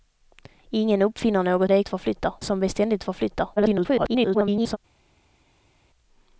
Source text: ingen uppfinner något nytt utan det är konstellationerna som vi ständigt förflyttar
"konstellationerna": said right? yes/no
no